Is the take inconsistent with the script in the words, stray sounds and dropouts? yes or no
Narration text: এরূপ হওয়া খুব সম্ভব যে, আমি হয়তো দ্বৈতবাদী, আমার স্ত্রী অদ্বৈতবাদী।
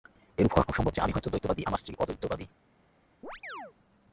yes